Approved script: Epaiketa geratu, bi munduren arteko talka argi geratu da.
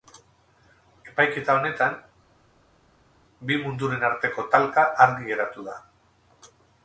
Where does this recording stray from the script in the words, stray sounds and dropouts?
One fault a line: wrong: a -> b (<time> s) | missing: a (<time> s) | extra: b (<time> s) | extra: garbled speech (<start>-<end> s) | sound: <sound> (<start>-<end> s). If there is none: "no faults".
wrong: geratu -> honetan (1.6 s)